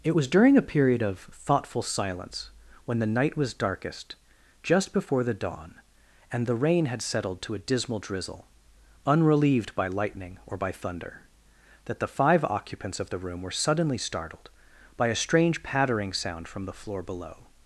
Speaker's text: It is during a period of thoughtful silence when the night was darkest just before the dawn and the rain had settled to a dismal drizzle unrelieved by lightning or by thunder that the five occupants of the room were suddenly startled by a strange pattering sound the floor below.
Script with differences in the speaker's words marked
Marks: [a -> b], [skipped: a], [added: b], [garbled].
It [is -> was] during a period of thoughtful silence when the night was darkest just before the dawn and the rain had settled to a dismal drizzle unrelieved by lightning or by thunder that the five occupants of the room were suddenly startled by a strange pattering sound [added: from] the floor below.